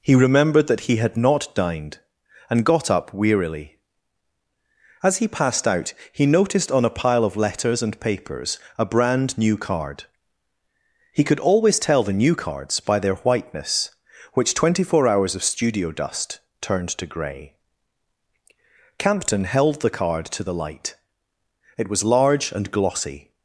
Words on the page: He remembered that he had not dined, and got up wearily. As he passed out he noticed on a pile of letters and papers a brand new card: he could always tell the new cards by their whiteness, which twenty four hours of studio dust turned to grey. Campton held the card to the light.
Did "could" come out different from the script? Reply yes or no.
no